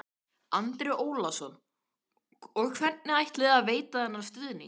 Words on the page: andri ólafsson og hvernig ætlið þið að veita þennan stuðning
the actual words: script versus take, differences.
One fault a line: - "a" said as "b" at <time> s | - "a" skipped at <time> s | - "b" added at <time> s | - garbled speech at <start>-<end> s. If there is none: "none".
none